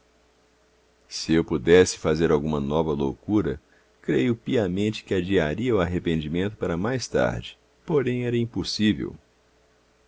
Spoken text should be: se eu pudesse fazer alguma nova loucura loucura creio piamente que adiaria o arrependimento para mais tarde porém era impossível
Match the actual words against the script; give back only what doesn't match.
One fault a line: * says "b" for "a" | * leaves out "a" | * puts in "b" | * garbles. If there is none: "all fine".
* leaves out "loucura"